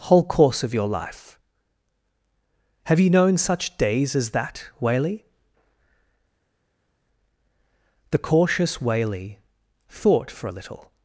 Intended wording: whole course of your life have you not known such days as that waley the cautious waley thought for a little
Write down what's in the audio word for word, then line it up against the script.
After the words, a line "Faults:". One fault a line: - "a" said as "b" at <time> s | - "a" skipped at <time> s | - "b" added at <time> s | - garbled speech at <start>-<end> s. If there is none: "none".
whole course of your life have you known such days as that waley the cautious waley thought for a little
Faults:
- "not" skipped at 3.1 s